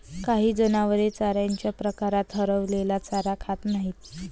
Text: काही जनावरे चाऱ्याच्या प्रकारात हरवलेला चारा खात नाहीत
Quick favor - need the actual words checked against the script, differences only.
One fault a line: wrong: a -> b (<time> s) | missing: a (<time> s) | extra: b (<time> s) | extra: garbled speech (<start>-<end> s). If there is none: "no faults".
no faults